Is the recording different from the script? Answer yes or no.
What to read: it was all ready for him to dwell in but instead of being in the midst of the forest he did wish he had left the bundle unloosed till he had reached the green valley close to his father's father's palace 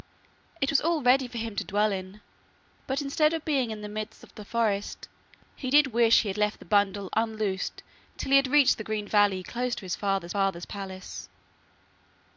no